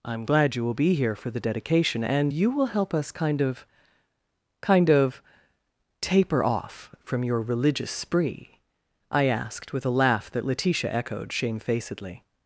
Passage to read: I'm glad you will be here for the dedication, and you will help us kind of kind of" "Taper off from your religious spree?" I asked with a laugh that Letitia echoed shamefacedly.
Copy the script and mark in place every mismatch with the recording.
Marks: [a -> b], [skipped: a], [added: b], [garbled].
I'm glad you will be here for the dedication, and you will help us kind of kind of" "Taper off from your religious spree?" I asked with a laugh that Letitia echoed shamefacedly.